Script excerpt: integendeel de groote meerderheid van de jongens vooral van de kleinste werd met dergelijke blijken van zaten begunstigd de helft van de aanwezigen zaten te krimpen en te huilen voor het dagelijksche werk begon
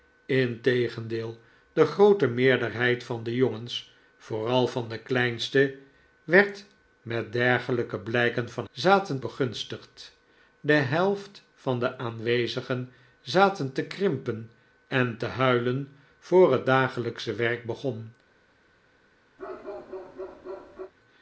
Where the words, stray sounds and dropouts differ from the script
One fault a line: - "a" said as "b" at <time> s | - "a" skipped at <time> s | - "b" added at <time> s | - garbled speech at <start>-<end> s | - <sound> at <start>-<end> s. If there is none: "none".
- bark at 19.4-20.9 s